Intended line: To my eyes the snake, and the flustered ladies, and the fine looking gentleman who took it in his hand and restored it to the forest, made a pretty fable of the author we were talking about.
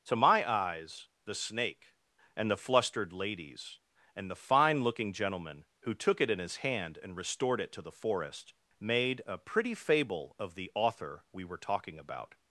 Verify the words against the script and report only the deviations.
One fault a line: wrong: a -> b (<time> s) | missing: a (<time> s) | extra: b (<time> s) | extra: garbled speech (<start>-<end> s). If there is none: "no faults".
no faults